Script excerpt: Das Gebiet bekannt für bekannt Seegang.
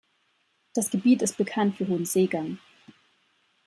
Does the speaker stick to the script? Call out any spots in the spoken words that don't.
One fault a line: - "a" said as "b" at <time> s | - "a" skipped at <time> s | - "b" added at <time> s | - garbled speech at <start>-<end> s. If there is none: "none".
- "ist" added at 1.2 s
- "bekannt" said as "hohen" at 1.9 s